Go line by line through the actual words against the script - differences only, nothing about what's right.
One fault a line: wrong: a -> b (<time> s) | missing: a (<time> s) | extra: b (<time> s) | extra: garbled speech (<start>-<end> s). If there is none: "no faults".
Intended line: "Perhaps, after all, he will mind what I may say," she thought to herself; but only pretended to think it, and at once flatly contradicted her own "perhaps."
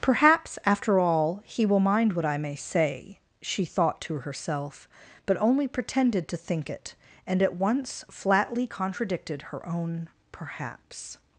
no faults